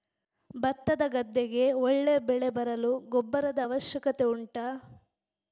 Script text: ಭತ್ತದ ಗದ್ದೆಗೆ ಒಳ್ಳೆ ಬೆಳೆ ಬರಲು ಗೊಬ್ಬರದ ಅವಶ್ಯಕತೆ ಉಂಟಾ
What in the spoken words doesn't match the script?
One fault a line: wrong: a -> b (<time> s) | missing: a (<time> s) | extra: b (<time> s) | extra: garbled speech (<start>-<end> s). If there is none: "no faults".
no faults